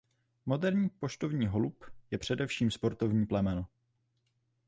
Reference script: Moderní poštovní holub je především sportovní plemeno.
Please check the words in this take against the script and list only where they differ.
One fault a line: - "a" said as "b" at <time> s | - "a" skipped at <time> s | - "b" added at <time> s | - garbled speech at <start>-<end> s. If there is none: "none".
none